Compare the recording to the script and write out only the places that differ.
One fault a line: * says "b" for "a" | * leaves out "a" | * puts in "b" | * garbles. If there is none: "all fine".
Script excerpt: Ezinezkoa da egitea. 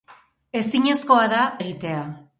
all fine